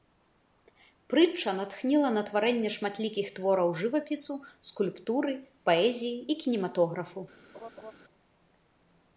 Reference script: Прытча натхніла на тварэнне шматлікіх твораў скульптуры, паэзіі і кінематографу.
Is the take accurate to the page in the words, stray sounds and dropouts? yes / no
no